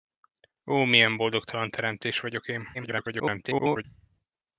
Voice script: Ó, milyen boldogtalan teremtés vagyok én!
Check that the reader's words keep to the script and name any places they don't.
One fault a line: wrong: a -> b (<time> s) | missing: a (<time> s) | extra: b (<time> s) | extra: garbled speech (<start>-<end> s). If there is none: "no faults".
extra: garbled speech (2.7-3.8 s)